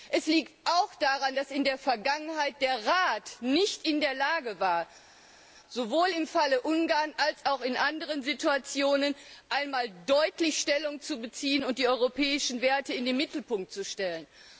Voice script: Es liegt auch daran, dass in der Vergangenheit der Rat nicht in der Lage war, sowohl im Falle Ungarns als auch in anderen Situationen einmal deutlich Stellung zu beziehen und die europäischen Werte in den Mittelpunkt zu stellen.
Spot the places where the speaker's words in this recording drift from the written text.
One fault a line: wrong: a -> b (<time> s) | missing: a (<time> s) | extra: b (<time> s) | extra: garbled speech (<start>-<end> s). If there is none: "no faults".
no faults